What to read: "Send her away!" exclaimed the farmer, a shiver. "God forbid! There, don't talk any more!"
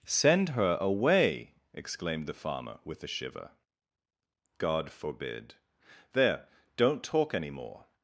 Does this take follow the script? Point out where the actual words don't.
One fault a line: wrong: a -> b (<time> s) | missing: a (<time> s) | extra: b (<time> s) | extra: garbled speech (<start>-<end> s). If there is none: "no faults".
extra: with (2.9 s)